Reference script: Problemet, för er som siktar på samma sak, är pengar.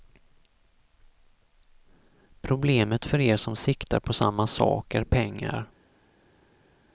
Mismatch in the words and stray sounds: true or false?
false